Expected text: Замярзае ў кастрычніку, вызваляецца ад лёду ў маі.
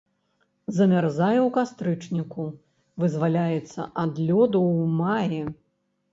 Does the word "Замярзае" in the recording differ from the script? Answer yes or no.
no